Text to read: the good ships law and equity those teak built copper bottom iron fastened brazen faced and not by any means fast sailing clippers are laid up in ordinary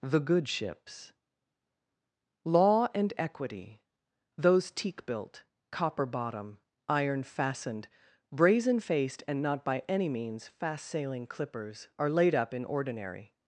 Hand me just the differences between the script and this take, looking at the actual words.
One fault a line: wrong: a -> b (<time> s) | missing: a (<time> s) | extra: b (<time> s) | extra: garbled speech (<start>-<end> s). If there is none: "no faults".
no faults